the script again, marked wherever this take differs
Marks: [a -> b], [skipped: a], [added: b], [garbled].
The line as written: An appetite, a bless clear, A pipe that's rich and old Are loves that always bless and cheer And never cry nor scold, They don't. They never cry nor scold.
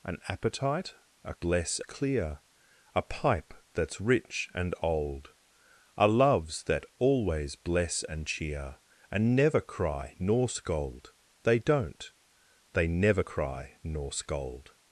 An appetite, a bless clear, A pipe that's rich and old Are loves that always bless and cheer And never cry nor scold, They don't. They never cry nor scold.